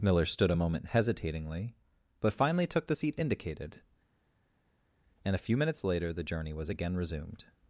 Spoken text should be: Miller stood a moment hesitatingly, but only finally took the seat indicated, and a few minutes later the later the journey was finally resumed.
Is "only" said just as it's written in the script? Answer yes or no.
no